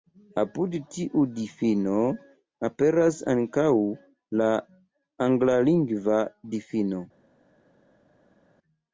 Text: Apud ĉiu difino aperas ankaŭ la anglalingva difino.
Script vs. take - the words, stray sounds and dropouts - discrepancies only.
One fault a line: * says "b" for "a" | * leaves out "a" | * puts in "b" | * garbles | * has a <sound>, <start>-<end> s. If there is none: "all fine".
* says "tiu" for "ĉiu"